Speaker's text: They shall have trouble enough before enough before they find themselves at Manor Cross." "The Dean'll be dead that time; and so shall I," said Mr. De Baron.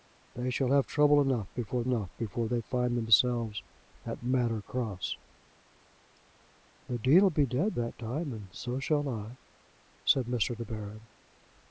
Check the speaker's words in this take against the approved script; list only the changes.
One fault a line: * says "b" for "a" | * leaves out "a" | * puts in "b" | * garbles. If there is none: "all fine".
all fine